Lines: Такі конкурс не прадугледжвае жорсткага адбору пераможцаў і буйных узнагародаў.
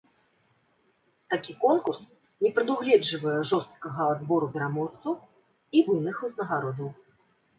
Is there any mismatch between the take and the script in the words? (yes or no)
no